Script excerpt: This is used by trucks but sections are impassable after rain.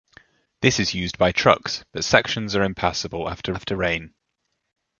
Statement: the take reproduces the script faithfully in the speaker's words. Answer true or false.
false